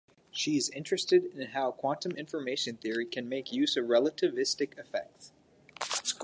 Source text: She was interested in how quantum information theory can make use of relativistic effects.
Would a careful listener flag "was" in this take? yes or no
yes